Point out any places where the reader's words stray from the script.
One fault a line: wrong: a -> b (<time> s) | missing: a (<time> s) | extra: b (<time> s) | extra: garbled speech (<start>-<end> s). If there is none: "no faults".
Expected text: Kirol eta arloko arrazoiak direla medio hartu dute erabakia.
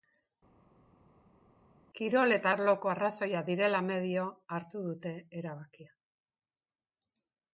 no faults